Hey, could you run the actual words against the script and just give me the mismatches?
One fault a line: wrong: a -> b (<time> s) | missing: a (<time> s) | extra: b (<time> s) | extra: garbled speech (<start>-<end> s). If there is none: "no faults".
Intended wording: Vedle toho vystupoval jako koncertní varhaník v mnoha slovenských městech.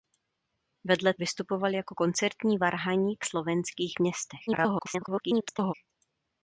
missing: toho (1.1 s)
missing: v mnoha (3.2 s)
extra: garbled speech (4.5-5.7 s)